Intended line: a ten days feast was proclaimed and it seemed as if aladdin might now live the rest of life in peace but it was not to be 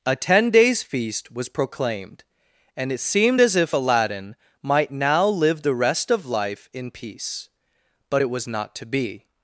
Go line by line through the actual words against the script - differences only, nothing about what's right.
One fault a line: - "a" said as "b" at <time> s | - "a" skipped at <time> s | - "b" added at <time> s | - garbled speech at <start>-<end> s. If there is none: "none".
none